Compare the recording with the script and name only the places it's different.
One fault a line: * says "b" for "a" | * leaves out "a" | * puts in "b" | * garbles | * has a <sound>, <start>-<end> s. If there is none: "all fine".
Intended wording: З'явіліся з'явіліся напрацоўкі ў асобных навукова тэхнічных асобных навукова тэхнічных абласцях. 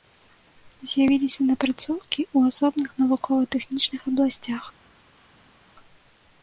* leaves out "з'явіліся"
* leaves out "асобных навукова тэхнічных"